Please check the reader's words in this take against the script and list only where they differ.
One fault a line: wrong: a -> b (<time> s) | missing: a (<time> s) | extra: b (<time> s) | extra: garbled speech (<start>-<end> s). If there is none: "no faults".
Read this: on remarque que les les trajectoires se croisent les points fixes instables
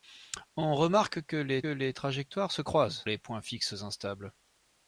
no faults